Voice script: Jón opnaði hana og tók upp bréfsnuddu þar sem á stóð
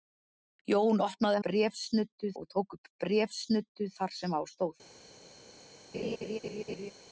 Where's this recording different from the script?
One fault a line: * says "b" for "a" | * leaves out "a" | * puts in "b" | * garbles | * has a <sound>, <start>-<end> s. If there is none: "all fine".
* says "bréfsnuddu" for "hana"
* has a laugh, 5.9-6.9 s